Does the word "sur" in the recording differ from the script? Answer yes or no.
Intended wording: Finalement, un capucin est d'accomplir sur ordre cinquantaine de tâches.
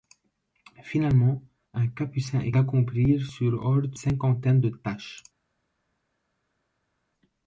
no